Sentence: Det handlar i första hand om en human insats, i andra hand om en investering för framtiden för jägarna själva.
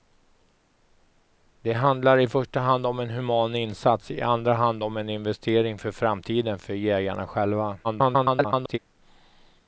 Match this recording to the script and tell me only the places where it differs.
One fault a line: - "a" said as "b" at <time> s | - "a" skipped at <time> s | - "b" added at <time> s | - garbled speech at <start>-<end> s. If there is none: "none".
- garbled speech at 7.8-8.8 s